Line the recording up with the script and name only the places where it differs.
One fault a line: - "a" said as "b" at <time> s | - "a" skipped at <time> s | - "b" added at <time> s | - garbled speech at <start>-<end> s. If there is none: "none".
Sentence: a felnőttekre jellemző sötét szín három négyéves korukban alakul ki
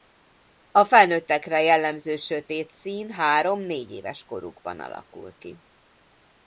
none